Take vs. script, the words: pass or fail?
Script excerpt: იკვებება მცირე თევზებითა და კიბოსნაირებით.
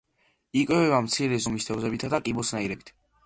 fail